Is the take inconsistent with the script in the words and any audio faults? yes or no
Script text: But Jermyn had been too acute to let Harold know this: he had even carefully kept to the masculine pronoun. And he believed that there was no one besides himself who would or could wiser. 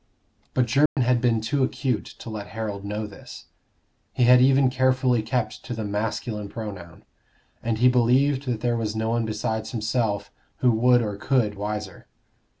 yes